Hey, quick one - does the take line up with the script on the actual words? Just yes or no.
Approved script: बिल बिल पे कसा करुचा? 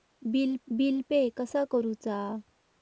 yes